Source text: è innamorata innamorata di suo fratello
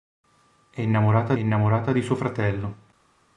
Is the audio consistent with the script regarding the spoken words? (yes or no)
yes